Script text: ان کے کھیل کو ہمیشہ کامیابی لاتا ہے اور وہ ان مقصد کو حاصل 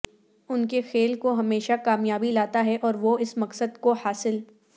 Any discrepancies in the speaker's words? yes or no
yes